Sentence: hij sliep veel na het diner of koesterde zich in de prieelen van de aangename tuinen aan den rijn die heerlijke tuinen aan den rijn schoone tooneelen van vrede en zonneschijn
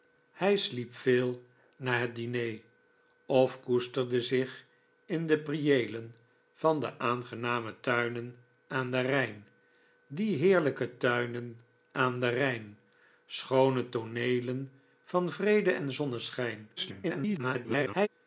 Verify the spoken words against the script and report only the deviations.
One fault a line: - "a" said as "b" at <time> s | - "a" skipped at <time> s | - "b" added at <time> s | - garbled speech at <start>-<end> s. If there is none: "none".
- garbled speech at 16.8-18.1 s